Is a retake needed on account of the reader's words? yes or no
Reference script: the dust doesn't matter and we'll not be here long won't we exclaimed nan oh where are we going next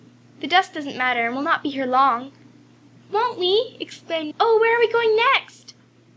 yes